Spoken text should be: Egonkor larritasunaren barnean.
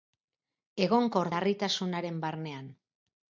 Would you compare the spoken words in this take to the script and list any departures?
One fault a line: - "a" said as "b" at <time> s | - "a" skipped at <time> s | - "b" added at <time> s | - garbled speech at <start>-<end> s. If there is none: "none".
none